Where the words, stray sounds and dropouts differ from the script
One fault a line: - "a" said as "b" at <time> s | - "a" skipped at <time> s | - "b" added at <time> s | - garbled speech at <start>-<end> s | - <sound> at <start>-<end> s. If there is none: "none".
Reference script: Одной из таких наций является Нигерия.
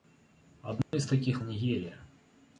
- dropout at 0.8-0.9 s
- "наций является" skipped at 1.4 s